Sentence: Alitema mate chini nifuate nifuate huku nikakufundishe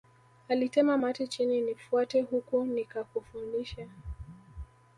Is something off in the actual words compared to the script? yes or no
yes